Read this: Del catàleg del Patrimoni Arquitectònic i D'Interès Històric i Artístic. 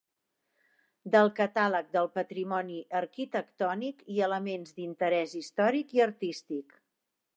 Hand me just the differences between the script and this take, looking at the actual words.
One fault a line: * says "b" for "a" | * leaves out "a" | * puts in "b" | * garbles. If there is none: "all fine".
* puts in "Elements"